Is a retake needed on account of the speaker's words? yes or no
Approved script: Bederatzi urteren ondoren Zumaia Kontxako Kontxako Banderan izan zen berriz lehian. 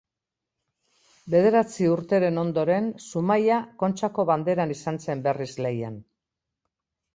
yes